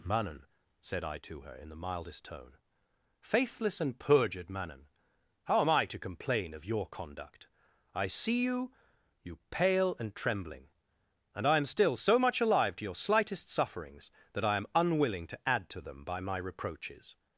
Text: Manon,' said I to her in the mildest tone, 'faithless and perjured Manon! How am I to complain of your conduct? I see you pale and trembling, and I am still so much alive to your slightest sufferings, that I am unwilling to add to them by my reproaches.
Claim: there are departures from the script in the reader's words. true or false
true